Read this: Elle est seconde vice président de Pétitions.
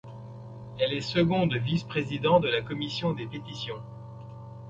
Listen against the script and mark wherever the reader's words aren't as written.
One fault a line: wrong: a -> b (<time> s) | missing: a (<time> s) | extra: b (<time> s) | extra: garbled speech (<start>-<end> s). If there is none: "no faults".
extra: la commission des (2.5 s)